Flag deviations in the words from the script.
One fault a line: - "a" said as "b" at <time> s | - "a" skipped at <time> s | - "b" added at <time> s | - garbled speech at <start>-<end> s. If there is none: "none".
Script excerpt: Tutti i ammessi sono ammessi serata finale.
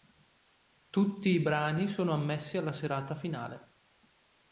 - "ammessi" said as "brani" at 1.4 s
- "alla" added at 2.6 s